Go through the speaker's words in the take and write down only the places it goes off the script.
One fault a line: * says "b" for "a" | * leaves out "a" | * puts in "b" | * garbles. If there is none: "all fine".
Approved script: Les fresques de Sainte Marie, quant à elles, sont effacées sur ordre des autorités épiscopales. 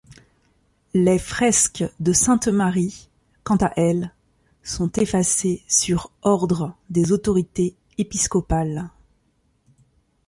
all fine